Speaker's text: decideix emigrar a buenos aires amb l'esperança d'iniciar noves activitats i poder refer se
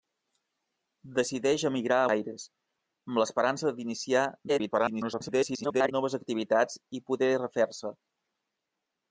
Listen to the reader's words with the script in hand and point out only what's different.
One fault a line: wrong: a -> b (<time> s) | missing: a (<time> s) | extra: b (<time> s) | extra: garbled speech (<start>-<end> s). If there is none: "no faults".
missing: buenos (2.1 s)
extra: garbled speech (4.5-5.9 s)